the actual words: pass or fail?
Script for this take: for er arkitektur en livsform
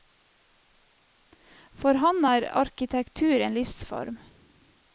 fail